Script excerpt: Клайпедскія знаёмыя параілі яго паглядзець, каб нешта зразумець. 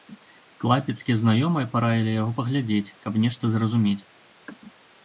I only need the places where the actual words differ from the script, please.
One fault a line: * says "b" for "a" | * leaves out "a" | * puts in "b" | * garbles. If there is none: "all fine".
all fine